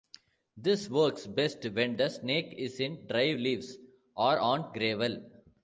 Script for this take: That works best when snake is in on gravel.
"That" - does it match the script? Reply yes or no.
no